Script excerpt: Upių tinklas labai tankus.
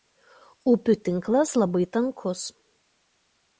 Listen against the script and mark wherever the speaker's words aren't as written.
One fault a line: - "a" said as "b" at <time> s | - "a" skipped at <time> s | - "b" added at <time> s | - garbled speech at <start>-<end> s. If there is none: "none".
none